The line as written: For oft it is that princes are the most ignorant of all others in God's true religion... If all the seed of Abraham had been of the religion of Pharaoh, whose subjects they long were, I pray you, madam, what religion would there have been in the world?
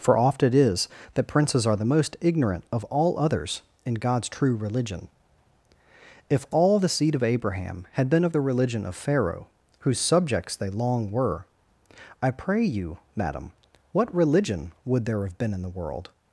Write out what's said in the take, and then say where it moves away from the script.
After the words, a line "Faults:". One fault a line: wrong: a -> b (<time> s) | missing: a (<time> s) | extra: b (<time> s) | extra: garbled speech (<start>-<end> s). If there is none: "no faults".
For oft it is that princes are the most ignorant of all others in God's true religion... If all the seed of Abraham had been of the religion of Pharaoh, whose subjects they long were, I pray you, madam, what religion would there have been in the world?
Faults:
no faults